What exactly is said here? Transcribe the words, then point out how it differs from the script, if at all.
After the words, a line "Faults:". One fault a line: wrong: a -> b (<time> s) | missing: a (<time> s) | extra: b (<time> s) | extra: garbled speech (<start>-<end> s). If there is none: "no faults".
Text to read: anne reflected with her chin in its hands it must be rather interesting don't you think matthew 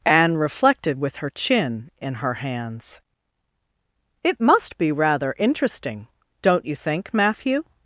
anne reflected with her chin in her hands it must be rather interesting don't you think matthew
Faults:
wrong: its -> her (2.1 s)